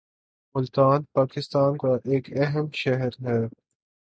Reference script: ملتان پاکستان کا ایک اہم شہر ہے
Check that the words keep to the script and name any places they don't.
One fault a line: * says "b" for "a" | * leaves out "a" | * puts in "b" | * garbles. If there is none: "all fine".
all fine